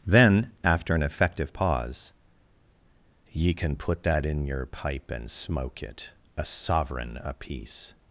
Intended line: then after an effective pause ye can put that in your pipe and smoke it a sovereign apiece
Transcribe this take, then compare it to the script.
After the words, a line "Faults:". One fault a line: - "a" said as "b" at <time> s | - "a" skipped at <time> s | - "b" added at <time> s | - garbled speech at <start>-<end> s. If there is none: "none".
then after an effective pause ye can put that in your pipe and smoke it a sovereign apiece
Faults:
none